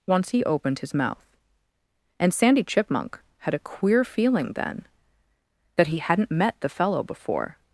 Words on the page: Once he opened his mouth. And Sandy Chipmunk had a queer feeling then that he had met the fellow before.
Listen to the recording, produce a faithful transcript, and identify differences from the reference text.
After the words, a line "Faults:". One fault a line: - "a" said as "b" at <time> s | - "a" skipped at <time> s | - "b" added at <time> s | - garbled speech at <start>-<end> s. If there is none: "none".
Once he opened his mouth. And Sandy Chipmunk had a queer feeling then that he hadn't met the fellow before.
Faults:
- "had" said as "hadn't" at 6.0 s